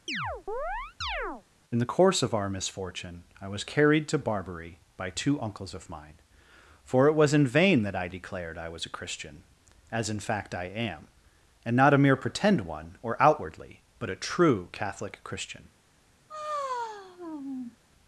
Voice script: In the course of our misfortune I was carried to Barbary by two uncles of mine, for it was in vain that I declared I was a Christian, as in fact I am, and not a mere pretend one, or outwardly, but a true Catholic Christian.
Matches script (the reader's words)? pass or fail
pass